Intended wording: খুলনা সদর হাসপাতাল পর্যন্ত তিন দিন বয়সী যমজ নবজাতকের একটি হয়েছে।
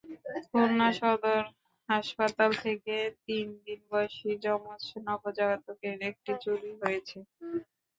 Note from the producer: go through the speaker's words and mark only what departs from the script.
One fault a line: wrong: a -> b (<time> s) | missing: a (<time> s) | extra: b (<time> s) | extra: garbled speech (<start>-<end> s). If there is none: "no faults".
wrong: পর্যন্ত -> থেকে (2.6 s)
extra: চুরি (6.4 s)